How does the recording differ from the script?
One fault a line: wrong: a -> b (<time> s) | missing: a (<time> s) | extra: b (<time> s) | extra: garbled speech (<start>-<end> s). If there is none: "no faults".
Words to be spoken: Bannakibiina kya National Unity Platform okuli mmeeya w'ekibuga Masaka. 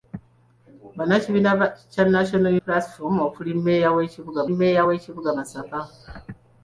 missing: Unity (2.5 s)
extra: mmeeya w'ekibuga (4.5 s)